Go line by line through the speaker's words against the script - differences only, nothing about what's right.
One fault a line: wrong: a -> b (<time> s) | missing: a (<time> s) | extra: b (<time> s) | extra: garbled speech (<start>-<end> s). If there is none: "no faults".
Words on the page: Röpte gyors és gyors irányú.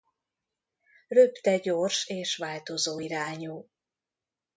wrong: gyors -> változó (2.4 s)